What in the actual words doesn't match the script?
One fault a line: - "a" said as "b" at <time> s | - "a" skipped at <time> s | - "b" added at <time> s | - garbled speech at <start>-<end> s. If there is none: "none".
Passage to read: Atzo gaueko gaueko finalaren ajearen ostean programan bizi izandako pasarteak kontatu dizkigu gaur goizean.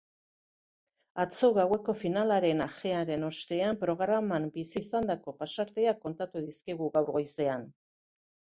- "gaueko" skipped at 1.9 s